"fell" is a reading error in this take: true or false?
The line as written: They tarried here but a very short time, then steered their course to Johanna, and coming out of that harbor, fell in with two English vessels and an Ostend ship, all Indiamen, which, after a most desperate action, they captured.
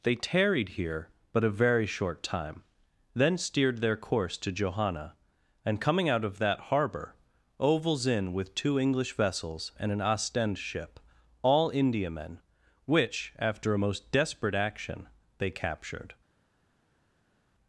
true